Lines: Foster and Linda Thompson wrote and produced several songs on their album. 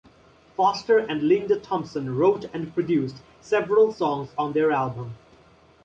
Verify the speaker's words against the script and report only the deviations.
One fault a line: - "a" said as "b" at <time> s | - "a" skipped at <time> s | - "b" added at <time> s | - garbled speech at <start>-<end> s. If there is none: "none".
none